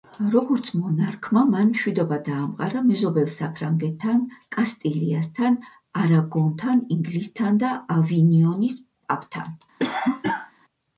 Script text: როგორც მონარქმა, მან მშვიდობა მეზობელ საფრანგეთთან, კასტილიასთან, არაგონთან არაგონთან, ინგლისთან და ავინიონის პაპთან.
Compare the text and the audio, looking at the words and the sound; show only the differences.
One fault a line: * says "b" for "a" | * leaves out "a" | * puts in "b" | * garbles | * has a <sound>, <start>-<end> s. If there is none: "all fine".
* puts in "დაამყარა"
* leaves out "არაგონთან"
* has a cough, 9.8-10.5 s